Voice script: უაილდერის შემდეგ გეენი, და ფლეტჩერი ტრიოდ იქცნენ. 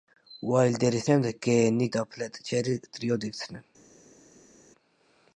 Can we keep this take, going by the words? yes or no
yes